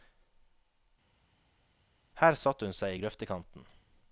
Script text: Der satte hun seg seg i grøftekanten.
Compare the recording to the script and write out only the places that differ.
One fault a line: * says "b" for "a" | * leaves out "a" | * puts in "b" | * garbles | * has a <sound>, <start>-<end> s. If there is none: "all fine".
* says "Her" for "Der"
* leaves out "seg"